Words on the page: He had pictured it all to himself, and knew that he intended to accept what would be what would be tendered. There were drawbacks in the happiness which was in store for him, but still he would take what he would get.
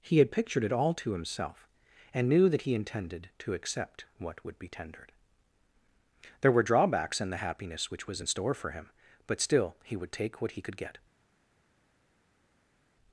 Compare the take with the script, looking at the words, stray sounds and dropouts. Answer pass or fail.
fail